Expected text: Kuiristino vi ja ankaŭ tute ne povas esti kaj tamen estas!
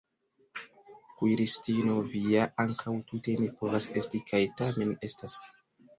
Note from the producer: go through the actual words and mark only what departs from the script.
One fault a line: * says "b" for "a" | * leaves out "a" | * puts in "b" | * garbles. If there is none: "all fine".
all fine